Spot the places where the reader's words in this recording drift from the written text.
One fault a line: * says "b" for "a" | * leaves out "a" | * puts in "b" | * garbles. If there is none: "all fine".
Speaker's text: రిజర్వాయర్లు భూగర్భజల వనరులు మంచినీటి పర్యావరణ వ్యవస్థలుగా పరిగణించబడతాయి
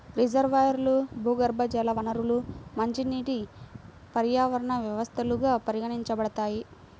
all fine